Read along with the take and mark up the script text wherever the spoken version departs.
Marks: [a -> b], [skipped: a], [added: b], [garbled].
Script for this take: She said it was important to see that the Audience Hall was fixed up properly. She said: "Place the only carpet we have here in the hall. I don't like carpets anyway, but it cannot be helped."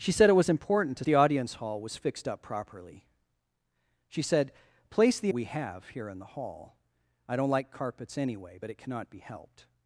She said it was important to [skipped: see that] the Audience Hall was fixed up properly. She said: "Place the [skipped: only carpet] we have here in the hall. I don't like carpets anyway, but it cannot be helped."